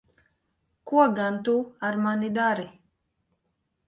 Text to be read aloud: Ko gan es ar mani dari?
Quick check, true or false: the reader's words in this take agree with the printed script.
false